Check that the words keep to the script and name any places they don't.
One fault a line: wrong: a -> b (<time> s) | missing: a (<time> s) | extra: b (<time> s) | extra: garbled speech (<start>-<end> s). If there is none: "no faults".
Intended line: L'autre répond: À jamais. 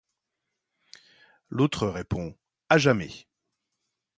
no faults